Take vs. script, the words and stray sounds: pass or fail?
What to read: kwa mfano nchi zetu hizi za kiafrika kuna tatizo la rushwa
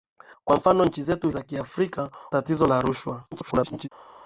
fail